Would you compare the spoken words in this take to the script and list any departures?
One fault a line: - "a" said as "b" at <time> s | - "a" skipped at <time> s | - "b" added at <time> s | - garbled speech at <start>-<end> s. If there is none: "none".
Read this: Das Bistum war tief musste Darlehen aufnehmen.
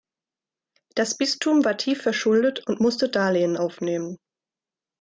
- "verschuldet und" added at 2.0 s